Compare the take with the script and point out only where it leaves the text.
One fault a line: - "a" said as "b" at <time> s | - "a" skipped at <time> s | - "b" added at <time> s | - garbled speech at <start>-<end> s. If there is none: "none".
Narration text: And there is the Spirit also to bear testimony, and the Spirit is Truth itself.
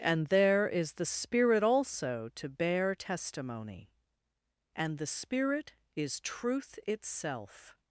none